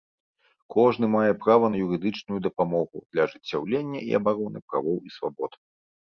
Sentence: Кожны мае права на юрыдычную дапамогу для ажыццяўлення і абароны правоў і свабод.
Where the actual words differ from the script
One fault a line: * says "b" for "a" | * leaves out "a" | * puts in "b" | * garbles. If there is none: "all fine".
all fine